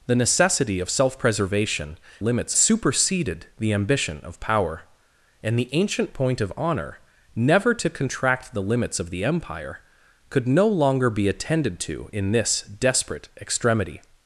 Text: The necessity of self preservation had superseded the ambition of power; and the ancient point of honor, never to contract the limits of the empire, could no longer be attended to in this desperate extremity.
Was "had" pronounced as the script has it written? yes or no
no